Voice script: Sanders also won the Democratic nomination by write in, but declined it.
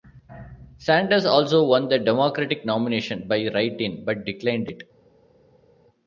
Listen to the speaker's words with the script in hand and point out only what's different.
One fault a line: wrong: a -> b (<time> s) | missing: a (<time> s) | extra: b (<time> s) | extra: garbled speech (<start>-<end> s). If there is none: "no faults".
no faults